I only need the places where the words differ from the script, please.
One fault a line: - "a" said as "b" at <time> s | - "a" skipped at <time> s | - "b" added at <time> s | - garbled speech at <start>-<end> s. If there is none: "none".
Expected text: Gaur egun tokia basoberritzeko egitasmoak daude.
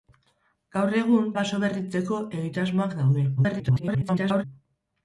- "tokia" skipped at 1.3 s
- garbled speech at 3.4-4.4 s